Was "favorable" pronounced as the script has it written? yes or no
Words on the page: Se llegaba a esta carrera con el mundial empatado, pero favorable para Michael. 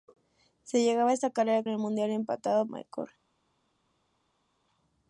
no